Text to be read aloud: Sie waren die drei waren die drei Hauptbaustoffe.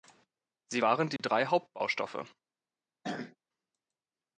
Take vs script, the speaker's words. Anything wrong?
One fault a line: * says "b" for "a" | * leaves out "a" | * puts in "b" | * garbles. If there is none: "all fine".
* leaves out "waren die drei"